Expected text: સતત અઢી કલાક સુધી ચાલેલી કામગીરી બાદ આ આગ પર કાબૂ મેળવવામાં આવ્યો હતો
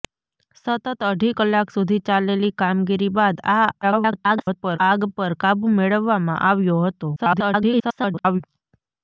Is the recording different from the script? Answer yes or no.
yes